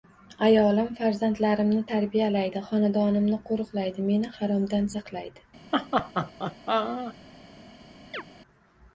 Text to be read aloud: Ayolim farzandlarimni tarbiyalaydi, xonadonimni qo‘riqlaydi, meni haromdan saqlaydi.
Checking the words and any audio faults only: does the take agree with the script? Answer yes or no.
no